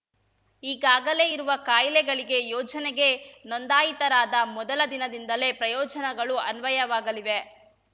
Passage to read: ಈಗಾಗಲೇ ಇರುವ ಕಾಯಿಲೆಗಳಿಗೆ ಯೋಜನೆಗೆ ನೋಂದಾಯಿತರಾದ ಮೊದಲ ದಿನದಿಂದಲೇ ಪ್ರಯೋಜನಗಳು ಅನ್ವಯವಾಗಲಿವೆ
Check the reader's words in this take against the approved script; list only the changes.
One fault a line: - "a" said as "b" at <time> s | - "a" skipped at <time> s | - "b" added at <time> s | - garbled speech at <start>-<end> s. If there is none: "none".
none